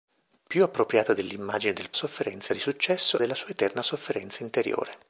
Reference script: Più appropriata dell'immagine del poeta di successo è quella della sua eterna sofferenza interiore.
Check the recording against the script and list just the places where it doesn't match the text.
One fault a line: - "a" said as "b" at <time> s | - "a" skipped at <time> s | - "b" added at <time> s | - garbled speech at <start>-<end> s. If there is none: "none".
- "poeta" said as "sofferenza" at 1.9 s
- "è quella" skipped at 3.2 s